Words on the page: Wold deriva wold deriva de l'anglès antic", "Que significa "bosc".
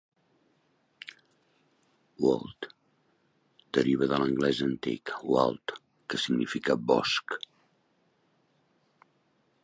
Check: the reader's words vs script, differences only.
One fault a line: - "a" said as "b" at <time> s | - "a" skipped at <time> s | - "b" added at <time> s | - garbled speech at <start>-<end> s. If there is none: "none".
- "wold deriva" skipped at 4.1 s
- "Wald" added at 5.3 s